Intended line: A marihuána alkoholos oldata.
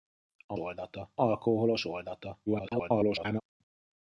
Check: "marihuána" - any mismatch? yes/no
yes